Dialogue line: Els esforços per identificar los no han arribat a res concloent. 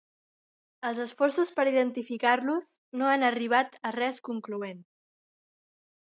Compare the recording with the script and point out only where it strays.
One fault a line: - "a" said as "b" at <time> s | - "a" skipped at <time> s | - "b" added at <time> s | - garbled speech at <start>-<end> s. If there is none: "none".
none